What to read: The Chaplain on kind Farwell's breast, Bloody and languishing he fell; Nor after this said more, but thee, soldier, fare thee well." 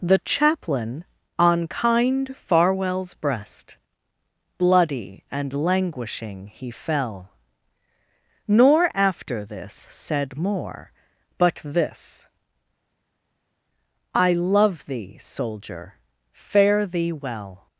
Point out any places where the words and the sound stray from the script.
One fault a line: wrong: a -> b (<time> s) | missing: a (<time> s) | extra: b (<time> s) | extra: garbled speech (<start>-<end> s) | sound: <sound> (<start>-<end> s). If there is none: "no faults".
extra: this I love (11.6 s)